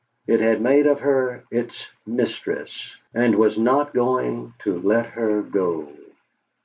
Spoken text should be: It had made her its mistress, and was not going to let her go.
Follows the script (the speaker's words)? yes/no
no